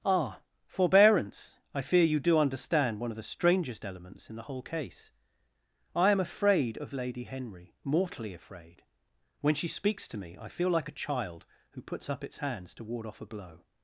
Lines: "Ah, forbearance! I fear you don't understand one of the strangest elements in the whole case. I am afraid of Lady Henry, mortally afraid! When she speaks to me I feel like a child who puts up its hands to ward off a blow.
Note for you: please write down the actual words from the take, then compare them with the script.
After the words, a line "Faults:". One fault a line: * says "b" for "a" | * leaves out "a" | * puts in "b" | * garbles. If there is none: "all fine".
"Ah, forbearance! I fear you do understand one of the strangest elements in the whole case. I am afraid of Lady Henry, mortally afraid! When she speaks to me I feel like a child who puts up its hands to ward off a blow.
Faults:
* says "do" for "don't"